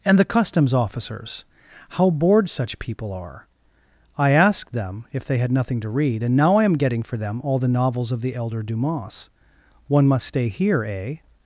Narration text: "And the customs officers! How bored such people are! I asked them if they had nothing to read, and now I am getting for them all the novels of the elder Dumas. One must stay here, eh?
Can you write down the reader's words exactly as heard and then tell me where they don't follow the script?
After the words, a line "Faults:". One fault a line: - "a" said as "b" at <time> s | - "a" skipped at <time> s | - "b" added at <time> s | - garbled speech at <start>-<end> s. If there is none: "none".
"And the customs officers! How bored such people are! I asked them if they had nothing to read, and now I am getting for them all the novels of the elder Dumas. One must stay here, eh?
Faults:
none